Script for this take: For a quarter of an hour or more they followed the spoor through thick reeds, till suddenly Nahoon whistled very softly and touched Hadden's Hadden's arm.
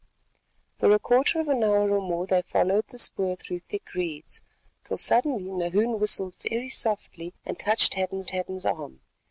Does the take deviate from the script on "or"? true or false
false